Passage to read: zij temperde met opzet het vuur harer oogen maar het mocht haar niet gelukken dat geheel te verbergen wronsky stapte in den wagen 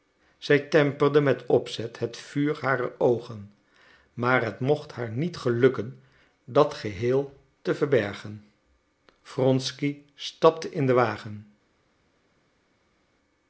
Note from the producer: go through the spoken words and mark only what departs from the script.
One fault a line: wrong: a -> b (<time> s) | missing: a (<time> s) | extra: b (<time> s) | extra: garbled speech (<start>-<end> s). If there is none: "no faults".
no faults